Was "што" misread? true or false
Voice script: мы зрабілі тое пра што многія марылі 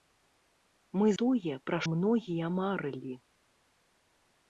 true